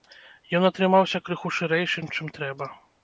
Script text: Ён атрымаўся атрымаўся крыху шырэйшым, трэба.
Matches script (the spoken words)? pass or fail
fail